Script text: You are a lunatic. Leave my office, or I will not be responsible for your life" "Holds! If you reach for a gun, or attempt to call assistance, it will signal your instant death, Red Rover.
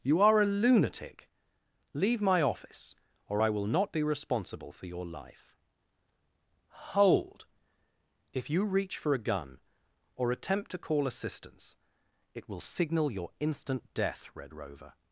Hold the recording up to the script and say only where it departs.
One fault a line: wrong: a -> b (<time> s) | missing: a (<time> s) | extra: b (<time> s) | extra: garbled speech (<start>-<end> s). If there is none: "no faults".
wrong: Holds -> Hold (6.9 s)